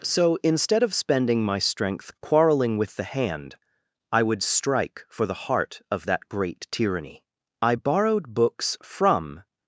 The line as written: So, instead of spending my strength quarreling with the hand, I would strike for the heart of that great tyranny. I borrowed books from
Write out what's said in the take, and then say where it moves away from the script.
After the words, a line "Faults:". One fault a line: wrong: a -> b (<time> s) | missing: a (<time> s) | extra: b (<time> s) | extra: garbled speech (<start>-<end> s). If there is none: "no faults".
So, instead of spending my strength quarreling with the hand, I would strike for the heart of that great tyranny. I borrowed books from
Faults:
no faults